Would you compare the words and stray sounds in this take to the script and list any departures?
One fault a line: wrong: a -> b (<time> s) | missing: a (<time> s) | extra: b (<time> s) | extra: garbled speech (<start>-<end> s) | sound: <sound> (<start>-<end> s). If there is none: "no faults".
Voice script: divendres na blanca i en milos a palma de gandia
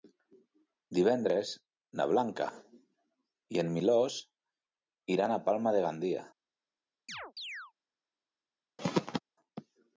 extra: iran (5.2 s)
sound: chirp (7.1-7.7 s)
sound: throat clearing (8.8-9.2 s)